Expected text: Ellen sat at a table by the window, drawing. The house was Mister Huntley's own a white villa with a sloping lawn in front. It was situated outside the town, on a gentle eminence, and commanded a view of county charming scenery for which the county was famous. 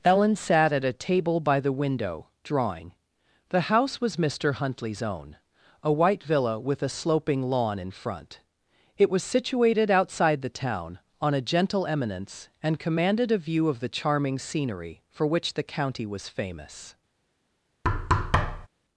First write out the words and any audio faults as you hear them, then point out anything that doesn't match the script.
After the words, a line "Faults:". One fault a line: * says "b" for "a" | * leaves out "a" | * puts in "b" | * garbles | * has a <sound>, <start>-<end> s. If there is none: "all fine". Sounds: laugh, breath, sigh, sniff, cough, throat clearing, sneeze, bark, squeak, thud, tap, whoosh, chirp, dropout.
Ellen sat at a table by the window, drawing. The house was Mister Huntley's own a white villa with a sloping lawn in front. It was situated outside the town, on a gentle eminence, and commanded a view of the charming scenery for which the county was famous.
Faults:
* says "the" for "county"
* has a thud, 17.8-18.7 s